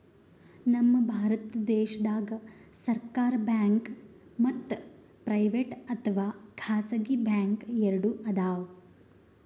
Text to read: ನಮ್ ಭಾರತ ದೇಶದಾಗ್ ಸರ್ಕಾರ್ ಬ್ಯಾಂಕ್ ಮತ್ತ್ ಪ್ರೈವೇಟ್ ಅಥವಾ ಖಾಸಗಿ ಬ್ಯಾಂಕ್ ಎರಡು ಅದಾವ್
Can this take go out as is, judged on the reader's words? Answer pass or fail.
pass